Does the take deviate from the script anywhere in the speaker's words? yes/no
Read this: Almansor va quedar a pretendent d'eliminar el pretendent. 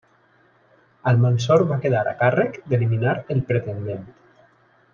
yes